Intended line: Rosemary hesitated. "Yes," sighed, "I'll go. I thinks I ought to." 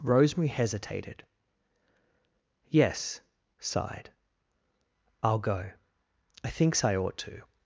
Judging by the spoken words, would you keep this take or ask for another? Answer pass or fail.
pass